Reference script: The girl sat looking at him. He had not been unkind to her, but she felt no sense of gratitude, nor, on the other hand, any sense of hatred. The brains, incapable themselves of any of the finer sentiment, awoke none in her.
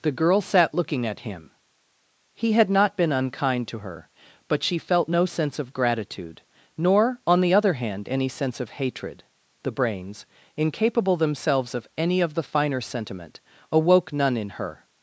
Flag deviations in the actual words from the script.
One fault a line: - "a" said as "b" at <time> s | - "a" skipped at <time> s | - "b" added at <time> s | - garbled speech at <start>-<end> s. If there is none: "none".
none